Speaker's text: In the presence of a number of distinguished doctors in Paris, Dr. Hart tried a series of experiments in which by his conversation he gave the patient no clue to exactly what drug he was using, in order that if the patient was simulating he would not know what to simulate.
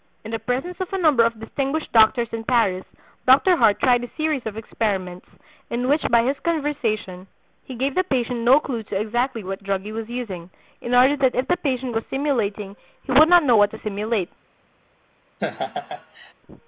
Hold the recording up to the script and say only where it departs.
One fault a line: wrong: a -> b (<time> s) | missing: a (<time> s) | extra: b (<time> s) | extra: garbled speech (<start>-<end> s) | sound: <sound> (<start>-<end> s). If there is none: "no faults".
sound: laugh (15.4-16.3 s)